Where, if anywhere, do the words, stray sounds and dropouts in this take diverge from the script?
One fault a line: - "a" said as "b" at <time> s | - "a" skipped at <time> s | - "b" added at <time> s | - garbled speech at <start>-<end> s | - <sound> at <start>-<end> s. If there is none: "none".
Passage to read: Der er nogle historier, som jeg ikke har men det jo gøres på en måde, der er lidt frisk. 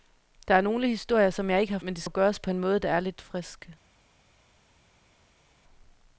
none